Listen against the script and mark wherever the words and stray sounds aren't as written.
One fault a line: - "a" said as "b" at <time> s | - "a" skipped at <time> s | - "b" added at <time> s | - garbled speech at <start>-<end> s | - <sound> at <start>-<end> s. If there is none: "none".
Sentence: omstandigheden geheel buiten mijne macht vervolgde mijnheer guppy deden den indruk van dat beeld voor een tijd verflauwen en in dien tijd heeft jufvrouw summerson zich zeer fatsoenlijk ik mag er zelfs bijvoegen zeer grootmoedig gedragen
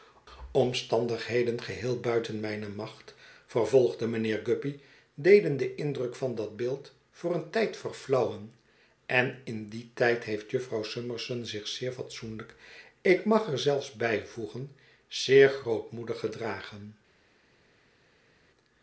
none